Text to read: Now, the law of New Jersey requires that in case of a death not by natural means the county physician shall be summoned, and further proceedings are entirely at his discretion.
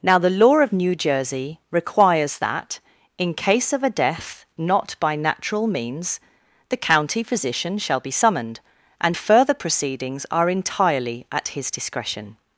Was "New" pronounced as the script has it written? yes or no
yes